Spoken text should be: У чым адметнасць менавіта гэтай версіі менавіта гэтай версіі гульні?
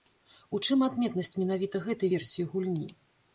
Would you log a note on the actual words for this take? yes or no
yes